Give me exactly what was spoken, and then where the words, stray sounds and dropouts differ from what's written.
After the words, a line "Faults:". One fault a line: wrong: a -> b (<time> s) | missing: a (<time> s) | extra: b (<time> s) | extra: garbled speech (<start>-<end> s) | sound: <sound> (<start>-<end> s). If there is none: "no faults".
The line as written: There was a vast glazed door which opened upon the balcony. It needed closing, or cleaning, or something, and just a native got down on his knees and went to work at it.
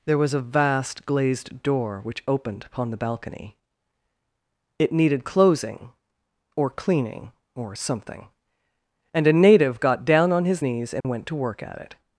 There was a vast glazed door which opened upon the balcony. It needed closing, or cleaning, or something, and a native got down on his knees and went to work at it.
Faults:
missing: just (9.3 s)
sound: dropout (11.0-11.0 s)